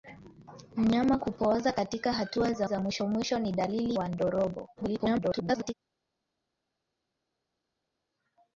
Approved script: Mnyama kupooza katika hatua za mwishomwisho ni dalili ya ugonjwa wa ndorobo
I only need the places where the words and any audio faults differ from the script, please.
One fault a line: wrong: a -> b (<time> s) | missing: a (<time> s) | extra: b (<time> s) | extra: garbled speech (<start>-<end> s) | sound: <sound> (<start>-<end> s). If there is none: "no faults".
extra: za (2.6 s)
missing: ya ugonjwa (4.0 s)
extra: garbled speech (4.8-5.7 s)